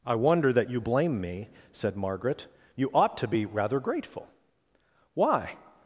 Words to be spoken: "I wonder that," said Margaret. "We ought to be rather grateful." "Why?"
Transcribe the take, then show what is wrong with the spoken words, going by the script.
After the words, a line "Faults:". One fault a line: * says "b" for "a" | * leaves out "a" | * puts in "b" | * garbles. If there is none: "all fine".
"I wonder that you blame me," said Margaret. "You ought to be rather grateful." "Why?"
Faults:
* puts in "you blame me"
* says "You" for "We"